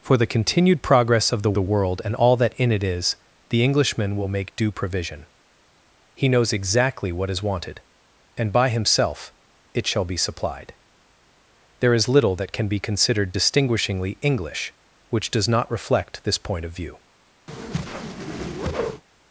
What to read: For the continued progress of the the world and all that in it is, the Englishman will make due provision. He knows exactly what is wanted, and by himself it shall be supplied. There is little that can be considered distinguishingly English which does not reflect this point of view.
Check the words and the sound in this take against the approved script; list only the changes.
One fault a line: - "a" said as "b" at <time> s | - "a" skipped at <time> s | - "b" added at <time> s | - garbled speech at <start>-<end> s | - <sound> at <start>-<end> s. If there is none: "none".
- whoosh at 17.5-19.0 s